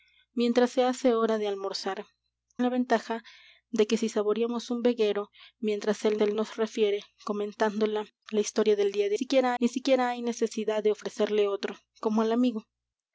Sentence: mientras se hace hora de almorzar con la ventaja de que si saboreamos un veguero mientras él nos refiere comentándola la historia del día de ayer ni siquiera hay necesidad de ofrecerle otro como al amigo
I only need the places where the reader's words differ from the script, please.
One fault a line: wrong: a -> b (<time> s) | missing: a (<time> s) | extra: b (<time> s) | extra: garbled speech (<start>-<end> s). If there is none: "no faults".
missing: con (2.1 s)
extra: él (6.2 s)
wrong: ayer -> siquiera (9.1 s)